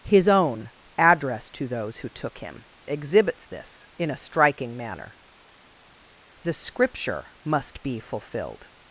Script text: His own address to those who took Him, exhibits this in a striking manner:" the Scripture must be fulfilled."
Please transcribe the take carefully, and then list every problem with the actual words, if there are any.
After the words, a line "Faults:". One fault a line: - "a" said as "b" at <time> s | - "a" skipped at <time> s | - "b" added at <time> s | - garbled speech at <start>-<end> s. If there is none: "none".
His own address to those who took Him, exhibits this in a striking manner:" the Scripture must be fulfilled."
Faults:
none